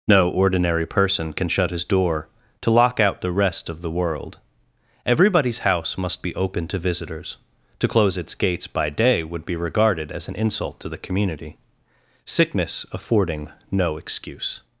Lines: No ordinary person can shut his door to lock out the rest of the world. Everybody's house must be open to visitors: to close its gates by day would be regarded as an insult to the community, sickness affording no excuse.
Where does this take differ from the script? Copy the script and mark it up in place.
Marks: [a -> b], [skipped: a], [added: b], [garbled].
No ordinary person can shut his door to lock out the rest of the world. Everybody's house must be open to visitors: to close its gates by day would be regarded as an insult to the community, sickness affording no excuse.